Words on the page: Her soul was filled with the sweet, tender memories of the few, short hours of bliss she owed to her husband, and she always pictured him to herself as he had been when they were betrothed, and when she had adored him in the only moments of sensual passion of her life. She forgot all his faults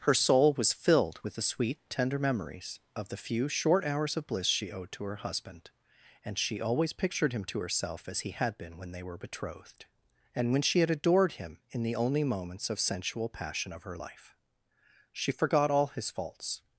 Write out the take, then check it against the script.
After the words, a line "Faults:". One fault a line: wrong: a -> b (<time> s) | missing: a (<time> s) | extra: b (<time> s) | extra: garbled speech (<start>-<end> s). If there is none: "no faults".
Her soul was filled with the sweet, tender memories of the few, short hours of bliss she owed to her husband, and she always pictured him to herself as he had been when they were betrothed, and when she had adored him in the only moments of sensual passion of her life. She forgot all his faults
Faults:
no faults